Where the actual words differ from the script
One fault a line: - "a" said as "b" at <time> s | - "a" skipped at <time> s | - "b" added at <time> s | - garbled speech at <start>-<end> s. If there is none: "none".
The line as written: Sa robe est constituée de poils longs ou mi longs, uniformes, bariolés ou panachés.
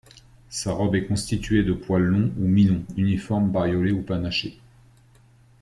none